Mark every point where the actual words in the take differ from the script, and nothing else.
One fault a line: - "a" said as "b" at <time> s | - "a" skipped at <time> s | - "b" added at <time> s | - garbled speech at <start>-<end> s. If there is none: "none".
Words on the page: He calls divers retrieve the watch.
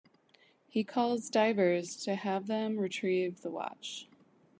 - "to have them" added at 2.0 s